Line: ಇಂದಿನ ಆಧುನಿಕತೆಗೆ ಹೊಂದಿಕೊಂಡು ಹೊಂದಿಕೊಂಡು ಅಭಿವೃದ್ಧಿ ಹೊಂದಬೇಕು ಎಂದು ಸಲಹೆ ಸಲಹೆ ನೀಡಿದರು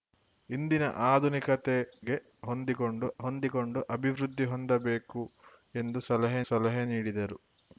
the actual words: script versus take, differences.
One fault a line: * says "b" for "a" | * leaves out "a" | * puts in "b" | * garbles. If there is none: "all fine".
all fine